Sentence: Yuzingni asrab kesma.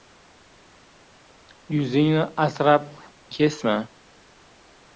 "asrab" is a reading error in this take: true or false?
false